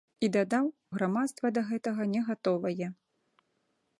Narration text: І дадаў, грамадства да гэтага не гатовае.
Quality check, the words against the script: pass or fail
pass